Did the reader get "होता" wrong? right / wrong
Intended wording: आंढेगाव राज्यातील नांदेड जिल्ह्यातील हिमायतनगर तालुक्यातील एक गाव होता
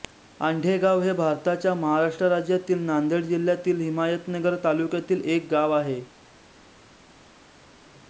wrong